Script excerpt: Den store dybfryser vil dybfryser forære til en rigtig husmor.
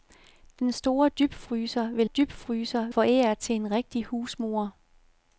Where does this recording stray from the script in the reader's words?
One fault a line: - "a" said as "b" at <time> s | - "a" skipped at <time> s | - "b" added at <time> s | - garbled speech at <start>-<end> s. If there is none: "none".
none